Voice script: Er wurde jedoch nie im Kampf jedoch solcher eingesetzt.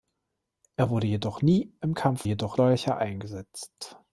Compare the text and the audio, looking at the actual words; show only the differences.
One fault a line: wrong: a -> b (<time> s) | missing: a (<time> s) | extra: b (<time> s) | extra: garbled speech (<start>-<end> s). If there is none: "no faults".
no faults